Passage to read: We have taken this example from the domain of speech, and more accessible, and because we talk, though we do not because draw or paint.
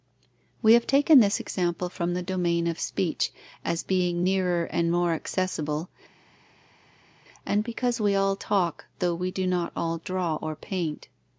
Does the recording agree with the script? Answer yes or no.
no